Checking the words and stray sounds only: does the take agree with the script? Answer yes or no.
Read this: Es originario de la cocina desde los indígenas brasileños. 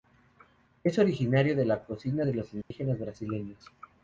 no